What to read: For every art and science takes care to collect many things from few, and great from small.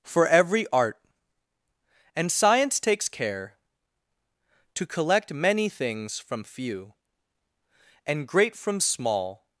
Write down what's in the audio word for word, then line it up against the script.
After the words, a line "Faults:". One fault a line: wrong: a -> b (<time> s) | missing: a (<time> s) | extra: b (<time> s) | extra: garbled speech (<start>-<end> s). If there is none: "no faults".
For every art and science takes care to collect many things from few, and great from small.
Faults:
no faults